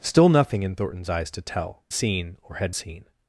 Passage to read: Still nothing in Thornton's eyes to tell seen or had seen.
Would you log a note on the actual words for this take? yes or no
no